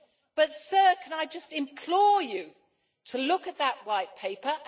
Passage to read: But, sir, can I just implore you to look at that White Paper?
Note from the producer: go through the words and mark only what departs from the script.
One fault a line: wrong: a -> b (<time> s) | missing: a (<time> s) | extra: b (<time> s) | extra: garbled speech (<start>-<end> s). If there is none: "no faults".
no faults